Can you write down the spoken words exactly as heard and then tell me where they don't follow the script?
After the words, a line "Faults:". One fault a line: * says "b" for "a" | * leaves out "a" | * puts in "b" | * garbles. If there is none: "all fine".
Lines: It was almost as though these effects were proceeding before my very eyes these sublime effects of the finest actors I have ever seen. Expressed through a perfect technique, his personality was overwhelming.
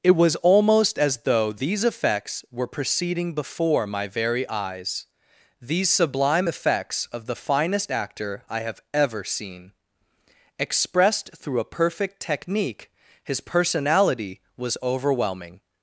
It was almost as though these effects were proceeding before my very eyes these sublime effects of the finest actor I have ever seen. Expressed through a perfect technique, his personality was overwhelming.
Faults:
* says "actor" for "actors"